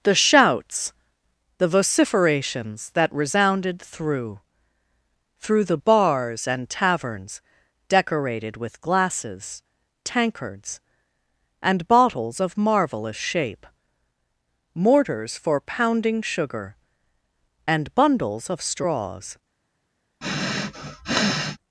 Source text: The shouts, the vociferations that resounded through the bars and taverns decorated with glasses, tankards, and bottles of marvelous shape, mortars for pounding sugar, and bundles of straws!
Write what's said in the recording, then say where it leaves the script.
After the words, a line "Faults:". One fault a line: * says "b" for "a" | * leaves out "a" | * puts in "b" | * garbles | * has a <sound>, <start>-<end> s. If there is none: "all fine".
The shouts, the vociferations that resounded through through the bars and taverns decorated with glasses, tankards, and bottles of marvelous shape, mortars for pounding sugar, and bundles of straws!
Faults:
* puts in "through"
* has a sniff, 20.2-21.6 s